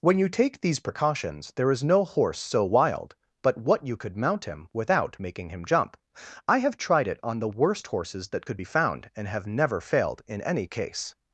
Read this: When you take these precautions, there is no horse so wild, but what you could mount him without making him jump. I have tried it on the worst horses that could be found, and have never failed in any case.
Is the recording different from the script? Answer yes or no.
no